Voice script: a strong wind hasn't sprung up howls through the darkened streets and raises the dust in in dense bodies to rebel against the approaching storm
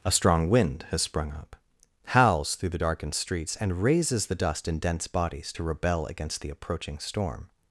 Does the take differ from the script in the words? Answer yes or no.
yes